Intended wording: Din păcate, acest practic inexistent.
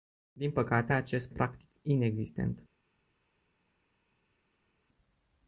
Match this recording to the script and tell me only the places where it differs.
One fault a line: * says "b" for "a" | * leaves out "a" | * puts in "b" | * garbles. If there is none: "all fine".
all fine